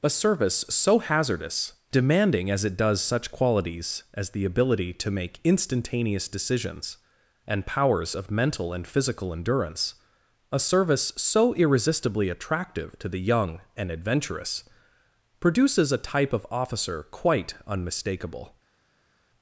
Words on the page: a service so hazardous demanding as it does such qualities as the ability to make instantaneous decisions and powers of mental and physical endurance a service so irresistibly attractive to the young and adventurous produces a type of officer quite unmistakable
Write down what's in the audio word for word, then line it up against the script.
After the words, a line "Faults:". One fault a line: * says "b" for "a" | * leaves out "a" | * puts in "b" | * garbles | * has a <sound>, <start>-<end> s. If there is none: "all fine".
a service so hazardous demanding as it does such qualities as the ability to make instantaneous decisions and powers of mental and physical endurance a service so irresistibly attractive to the young and adventurous produces a type of officer quite unmistakable
Faults:
all fine